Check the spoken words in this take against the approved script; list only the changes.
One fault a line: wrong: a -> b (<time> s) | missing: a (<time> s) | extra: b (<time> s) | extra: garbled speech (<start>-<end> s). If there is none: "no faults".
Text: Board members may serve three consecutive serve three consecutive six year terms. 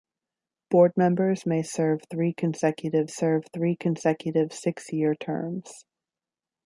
no faults